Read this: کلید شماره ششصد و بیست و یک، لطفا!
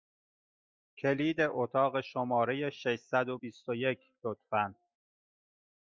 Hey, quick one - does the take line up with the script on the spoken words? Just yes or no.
no